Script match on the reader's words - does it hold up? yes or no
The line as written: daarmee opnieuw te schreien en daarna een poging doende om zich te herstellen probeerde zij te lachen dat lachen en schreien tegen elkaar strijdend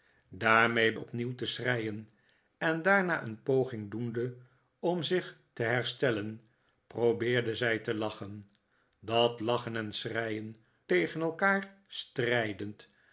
yes